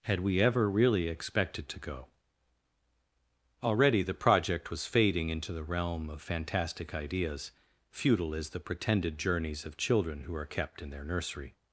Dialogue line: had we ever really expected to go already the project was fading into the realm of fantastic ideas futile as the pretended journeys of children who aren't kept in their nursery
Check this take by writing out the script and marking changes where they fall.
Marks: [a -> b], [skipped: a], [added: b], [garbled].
had we ever really expected to go already the project was fading into the realm of fantastic ideas futile as the pretended journeys of children who [aren't -> are] kept in their nursery